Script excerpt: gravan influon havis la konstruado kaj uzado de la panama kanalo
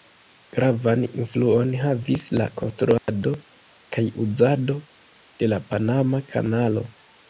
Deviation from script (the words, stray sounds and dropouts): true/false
true